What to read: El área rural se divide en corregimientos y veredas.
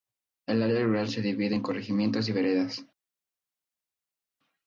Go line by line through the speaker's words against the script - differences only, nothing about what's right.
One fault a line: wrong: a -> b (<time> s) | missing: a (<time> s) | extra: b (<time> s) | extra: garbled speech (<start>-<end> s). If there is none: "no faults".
no faults